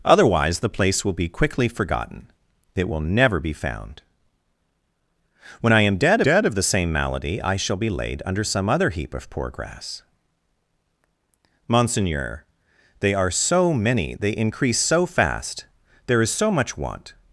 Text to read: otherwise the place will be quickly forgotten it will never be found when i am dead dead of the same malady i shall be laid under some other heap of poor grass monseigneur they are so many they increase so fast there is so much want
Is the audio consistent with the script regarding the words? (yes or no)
yes